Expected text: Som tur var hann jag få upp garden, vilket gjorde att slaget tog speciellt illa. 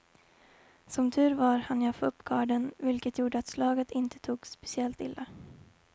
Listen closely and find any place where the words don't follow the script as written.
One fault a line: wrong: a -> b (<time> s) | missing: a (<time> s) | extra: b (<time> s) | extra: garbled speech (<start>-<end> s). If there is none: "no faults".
extra: inte (3.9 s)